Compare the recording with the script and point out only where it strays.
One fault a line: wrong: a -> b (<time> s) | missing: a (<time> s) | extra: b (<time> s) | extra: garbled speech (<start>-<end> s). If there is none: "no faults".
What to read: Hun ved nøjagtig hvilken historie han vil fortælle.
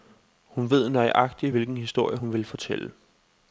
wrong: han -> hun (2.1 s)